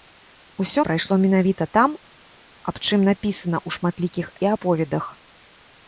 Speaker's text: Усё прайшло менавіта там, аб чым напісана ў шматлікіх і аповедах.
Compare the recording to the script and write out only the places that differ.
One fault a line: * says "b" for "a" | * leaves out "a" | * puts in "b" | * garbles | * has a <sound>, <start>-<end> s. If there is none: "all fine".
all fine